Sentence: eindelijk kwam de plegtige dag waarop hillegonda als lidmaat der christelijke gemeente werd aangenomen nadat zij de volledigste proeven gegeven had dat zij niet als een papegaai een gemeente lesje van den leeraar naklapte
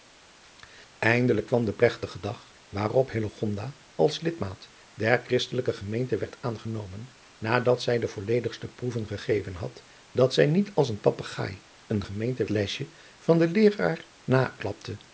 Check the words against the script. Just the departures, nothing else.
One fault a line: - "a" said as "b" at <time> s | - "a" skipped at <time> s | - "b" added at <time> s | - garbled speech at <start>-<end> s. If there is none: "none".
none